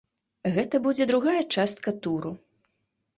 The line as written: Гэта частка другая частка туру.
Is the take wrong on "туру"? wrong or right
right